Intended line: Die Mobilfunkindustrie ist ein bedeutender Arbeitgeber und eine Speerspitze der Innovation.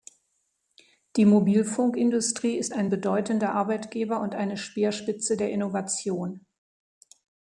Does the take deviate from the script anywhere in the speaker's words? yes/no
no